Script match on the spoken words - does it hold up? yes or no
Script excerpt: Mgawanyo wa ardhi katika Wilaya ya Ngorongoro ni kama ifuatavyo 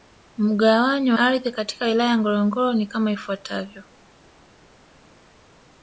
no